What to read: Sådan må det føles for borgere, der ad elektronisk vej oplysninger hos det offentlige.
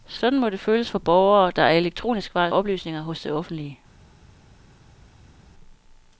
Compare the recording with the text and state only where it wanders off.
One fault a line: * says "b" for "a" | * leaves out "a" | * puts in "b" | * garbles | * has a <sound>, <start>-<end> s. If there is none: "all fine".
all fine